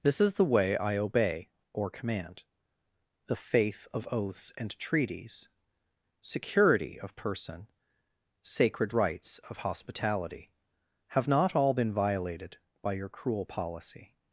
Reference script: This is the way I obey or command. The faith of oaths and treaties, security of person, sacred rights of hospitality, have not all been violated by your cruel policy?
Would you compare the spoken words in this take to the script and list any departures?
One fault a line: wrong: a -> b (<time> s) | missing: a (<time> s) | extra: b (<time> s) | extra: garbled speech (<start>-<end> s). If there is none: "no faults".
no faults